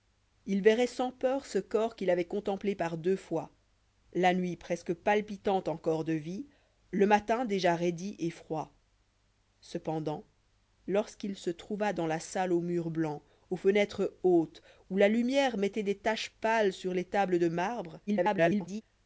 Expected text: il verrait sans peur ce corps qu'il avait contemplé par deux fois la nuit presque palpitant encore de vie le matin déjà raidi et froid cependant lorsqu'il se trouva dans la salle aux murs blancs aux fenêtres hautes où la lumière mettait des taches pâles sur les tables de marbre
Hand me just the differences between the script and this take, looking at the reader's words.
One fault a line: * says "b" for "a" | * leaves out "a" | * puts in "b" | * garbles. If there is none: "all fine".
* garbles